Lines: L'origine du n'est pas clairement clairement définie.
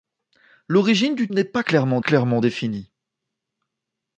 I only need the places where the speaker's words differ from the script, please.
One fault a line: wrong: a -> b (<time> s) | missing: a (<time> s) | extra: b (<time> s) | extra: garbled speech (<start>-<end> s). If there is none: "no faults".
no faults